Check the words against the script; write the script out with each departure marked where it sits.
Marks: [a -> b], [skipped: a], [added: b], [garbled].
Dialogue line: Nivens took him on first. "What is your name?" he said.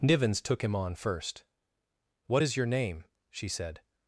Nivens took him on first. "What is your name?" [he -> she] said.